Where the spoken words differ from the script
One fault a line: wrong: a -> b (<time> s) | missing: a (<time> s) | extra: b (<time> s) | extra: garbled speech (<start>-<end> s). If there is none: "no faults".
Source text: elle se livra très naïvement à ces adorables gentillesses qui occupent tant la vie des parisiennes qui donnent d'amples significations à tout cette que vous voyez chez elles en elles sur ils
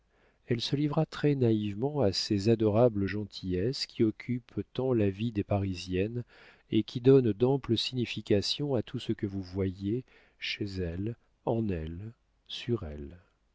extra: et (6.7 s)
wrong: cette -> ce (9.0 s)
wrong: ils -> elles (12.8 s)